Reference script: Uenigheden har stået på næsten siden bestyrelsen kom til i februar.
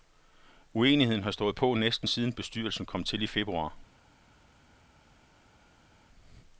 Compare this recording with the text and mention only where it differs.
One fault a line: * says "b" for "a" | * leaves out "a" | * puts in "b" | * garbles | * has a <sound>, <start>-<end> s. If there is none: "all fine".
all fine